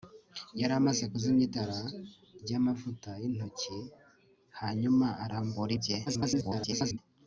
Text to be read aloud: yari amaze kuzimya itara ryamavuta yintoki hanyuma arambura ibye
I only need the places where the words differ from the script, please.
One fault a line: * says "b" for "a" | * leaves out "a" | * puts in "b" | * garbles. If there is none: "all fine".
* garbles